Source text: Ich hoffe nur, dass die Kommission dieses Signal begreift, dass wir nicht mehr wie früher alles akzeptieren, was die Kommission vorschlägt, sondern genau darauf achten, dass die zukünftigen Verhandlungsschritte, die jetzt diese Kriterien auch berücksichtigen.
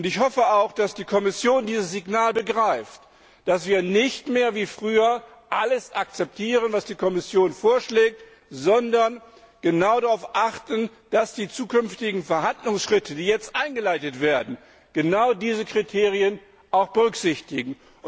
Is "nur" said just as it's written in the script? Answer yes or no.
no